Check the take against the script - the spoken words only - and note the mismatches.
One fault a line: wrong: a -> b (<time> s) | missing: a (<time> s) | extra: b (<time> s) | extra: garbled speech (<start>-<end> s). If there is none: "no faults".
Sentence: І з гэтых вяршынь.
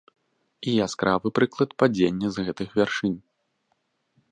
extra: яскравы прыклад падзення (0.8 s)